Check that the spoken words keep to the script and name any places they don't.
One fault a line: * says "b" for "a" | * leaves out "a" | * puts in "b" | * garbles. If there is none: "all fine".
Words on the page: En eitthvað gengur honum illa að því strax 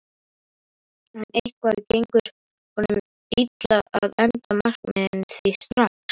* puts in "enda markmiðin"